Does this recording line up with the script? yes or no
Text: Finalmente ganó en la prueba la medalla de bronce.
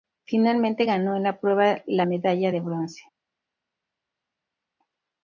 yes